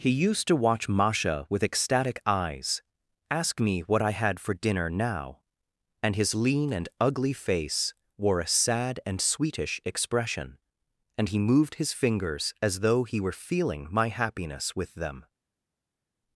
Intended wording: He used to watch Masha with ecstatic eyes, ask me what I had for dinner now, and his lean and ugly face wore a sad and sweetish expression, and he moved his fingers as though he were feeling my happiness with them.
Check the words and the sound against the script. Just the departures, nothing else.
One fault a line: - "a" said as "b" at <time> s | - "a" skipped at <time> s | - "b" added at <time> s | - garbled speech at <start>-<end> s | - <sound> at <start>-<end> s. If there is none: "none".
none